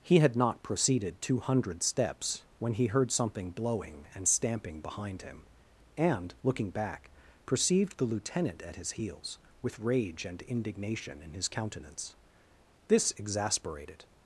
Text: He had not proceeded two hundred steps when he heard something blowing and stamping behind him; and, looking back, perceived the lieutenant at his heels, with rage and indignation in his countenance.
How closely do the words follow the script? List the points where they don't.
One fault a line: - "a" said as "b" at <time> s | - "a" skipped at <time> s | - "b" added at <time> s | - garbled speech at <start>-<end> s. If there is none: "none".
- "This exasperated" added at 12.9 s